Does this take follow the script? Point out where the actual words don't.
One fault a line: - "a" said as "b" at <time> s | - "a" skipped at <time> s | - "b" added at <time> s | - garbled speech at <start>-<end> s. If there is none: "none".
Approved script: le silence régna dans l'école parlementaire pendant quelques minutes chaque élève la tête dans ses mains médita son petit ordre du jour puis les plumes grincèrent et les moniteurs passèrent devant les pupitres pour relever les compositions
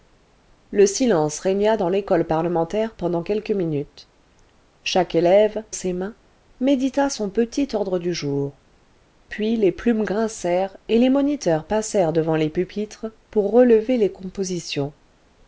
- "la tête dans" skipped at 5.6 s